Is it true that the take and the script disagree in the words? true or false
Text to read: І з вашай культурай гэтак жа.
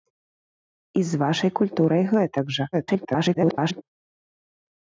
true